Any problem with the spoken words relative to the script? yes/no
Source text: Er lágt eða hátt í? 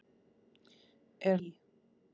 yes